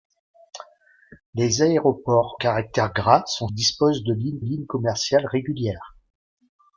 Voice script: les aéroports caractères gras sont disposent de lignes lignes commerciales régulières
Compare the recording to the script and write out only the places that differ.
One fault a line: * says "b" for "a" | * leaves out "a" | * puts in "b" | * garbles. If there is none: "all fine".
all fine